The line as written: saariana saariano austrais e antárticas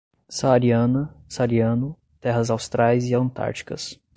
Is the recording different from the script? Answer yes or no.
yes